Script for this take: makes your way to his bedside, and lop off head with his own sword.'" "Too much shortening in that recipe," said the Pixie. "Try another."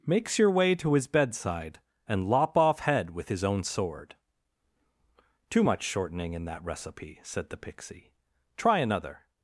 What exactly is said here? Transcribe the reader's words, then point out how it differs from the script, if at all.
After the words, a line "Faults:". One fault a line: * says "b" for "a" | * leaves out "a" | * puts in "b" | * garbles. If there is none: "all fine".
makes your way to his bedside, and lop off head with his own sword.'" "Too much shortening in that recipe," said the Pixie. "Try another."
Faults:
all fine